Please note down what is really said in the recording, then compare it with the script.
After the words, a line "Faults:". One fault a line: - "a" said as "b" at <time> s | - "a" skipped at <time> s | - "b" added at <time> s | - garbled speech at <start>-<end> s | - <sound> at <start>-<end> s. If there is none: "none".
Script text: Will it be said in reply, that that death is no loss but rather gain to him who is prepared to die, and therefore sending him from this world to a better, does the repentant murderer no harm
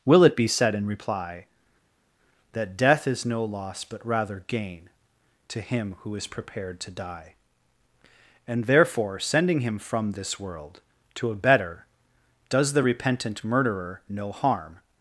Will it be said in reply, that death is no loss but rather gain to him who is prepared to die, and therefore sending him from this world to a better, does the repentant murderer no harm
Faults:
- "that" skipped at 2.8 s